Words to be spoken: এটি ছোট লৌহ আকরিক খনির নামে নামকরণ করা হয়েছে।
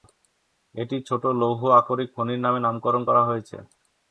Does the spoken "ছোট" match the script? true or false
true